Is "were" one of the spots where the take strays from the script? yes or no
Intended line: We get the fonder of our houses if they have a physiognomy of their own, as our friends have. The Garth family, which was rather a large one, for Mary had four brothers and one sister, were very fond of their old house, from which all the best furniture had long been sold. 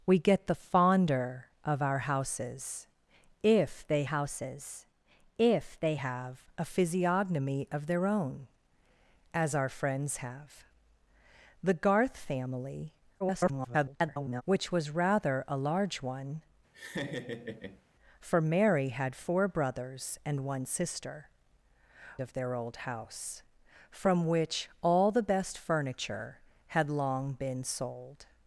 yes